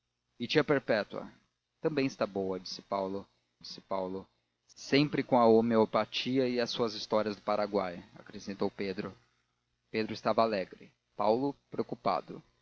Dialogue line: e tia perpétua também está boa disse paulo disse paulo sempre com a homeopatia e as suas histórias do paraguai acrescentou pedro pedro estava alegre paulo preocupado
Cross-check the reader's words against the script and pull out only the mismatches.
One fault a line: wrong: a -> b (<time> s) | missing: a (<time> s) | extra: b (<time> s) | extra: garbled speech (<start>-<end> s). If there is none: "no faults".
no faults